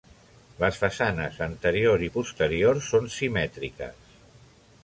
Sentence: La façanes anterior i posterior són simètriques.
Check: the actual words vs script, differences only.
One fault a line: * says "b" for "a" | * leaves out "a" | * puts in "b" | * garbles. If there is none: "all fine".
* says "Les" for "La"